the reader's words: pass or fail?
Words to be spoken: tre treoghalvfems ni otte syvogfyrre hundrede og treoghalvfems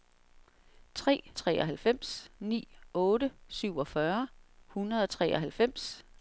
pass